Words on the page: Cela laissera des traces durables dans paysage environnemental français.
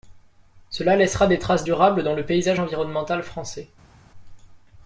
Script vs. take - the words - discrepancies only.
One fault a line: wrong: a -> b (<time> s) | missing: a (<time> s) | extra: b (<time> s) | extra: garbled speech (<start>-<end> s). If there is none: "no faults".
extra: le (2.1 s)